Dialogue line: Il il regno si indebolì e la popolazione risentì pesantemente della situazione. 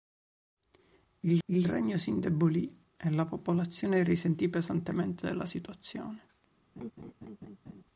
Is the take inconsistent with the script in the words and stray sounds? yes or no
yes